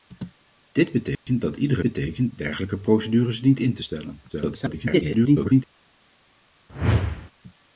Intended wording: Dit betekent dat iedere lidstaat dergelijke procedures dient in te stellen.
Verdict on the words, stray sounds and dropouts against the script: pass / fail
fail